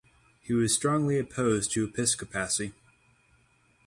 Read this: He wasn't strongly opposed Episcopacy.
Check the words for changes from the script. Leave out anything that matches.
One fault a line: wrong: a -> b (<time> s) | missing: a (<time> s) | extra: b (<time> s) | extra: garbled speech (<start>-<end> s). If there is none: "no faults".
wrong: wasn't -> was (0.5 s)
extra: to (1.7 s)